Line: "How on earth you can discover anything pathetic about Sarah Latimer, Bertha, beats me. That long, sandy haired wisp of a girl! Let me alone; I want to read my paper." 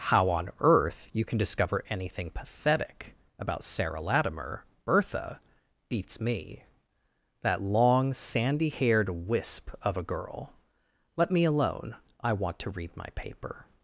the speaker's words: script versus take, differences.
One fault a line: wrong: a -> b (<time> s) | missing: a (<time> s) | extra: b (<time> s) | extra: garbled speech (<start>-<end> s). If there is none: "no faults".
no faults